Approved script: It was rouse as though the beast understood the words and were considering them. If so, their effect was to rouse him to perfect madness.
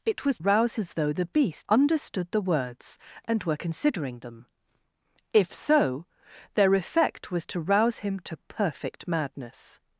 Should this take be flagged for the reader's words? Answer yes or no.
no